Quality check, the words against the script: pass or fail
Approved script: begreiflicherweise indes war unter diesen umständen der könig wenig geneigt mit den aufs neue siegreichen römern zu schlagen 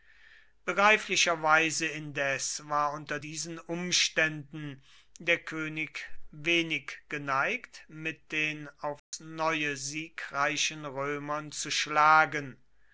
pass